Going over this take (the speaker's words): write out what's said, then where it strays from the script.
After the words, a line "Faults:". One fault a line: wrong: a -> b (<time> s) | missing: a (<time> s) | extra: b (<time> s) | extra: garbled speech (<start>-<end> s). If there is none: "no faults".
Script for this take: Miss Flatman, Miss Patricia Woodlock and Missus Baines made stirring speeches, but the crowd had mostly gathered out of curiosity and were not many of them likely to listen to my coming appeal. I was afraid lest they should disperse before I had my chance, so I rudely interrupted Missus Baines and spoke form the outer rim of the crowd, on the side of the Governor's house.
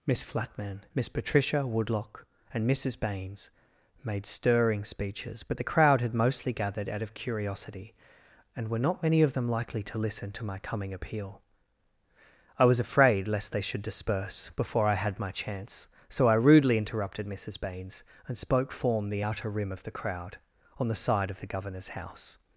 Miss Flatman, Miss Patricia Woodlock and Missus Baines made stirring speeches, but the crowd had mostly gathered out of curiosity and were not many of them likely to listen to my coming appeal. I was afraid lest they should disperse before I had my chance, so I rudely interrupted Missus Baines and spoke form the outer rim of the crowd, on the side of the Governor's house.
Faults:
no faults